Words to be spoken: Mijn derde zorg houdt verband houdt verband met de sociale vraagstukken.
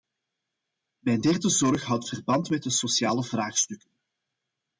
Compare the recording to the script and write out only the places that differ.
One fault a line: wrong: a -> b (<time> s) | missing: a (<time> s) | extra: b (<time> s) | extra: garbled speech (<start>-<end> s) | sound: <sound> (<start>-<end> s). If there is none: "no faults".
missing: houdt verband (2.5 s)